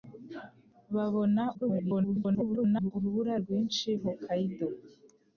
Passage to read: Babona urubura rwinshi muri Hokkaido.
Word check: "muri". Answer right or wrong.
wrong